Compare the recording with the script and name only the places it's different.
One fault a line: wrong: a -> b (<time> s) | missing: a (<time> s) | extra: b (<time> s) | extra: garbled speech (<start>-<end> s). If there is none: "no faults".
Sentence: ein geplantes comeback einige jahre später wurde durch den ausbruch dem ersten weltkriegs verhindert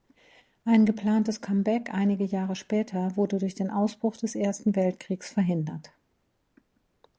wrong: dem -> des (4.2 s)